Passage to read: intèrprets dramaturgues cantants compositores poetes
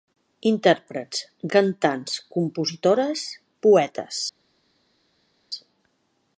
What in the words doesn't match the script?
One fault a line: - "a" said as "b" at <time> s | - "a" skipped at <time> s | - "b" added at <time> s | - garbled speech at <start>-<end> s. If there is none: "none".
- "dramaturgues" skipped at 1.2 s